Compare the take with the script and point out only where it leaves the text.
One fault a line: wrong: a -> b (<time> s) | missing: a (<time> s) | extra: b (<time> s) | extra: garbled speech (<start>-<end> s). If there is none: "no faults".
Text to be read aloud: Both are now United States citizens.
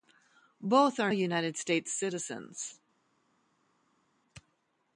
missing: now (1.1 s)